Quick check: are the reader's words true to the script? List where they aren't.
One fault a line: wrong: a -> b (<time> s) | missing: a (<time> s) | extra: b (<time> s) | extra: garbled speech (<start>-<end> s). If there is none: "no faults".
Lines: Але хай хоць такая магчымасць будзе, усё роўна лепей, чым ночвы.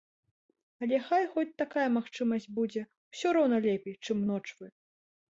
no faults